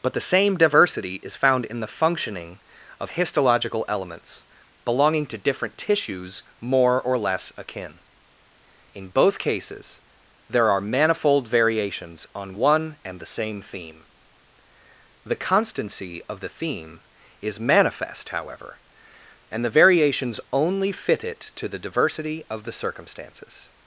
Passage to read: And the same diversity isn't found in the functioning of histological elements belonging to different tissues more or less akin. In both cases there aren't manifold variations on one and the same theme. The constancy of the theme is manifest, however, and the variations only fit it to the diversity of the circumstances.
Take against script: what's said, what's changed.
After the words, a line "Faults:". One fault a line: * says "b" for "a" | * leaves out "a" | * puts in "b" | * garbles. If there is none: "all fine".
But the same diversity is found in the functioning of histological elements belonging to different tissues more or less akin. In both cases there are manifold variations on one and the same theme. The constancy of the theme is manifest, however, and the variations only fit it to the diversity of the circumstances.
Faults:
* says "But" for "And"
* says "is" for "isn't"
* says "are" for "aren't"